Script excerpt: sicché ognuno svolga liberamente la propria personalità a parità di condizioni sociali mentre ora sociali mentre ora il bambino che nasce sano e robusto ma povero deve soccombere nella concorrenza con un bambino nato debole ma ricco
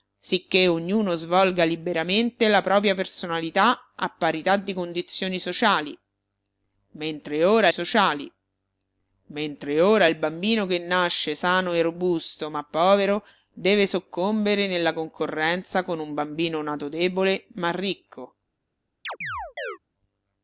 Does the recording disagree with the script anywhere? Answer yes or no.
no